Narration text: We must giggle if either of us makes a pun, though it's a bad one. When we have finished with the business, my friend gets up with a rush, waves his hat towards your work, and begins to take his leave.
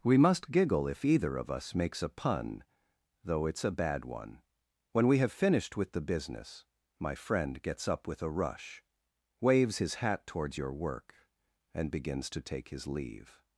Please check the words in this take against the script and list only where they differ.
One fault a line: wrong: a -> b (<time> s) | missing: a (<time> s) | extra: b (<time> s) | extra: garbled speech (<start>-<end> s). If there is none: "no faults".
no faults